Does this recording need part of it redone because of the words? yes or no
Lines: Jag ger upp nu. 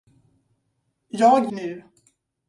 yes